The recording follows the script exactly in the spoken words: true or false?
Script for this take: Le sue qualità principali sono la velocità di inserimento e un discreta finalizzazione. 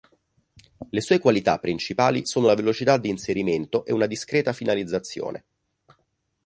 false